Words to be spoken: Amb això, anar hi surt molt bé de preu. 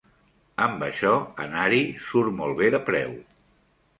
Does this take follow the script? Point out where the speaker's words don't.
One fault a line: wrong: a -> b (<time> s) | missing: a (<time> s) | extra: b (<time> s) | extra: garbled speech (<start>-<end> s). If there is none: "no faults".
no faults